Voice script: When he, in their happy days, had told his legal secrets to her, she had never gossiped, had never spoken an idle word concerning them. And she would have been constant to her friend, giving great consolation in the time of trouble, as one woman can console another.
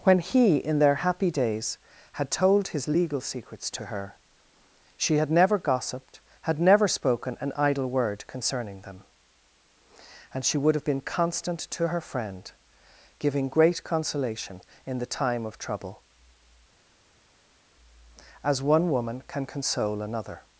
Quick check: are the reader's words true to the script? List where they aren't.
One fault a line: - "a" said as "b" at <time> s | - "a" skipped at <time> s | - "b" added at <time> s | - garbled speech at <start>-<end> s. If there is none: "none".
none